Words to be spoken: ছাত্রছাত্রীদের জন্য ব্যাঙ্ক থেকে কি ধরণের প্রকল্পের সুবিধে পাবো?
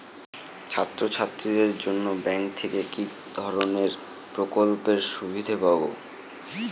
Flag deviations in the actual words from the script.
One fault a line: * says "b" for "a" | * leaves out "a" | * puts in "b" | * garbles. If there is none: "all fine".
all fine